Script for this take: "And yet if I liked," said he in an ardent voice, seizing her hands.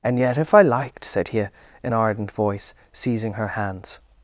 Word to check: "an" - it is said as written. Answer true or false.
false